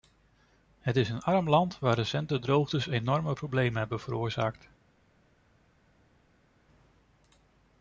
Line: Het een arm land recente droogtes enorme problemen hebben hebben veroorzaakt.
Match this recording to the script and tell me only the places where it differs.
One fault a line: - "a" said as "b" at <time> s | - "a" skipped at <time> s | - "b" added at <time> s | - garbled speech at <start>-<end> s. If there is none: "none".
- "is" added at 0.9 s
- "waar" added at 1.8 s
- "hebben" skipped at 4.0 s